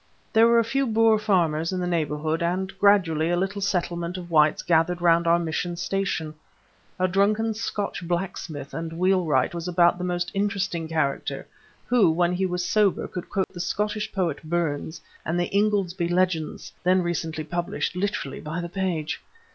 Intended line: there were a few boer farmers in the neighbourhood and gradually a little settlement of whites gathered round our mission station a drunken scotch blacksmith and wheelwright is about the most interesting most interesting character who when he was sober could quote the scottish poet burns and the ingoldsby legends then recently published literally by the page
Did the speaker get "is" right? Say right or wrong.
wrong